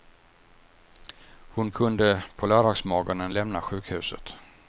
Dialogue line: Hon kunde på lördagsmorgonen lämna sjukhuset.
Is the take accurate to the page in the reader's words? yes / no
yes